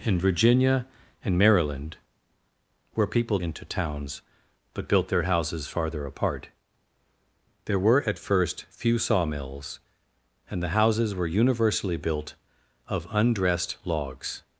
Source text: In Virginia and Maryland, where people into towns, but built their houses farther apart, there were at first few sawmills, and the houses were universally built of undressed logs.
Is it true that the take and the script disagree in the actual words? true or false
false